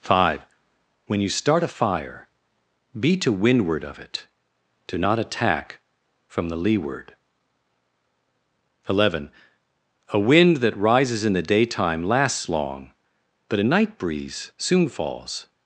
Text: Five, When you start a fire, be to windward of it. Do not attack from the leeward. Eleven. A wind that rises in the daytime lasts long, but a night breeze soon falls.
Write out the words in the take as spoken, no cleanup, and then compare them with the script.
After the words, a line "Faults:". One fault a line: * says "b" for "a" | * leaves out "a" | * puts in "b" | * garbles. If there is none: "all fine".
Five, When you start a fire, be to windward of it. Do not attack from the leeward. Eleven. A wind that rises in the daytime lasts long, but a night breeze soon falls.
Faults:
all fine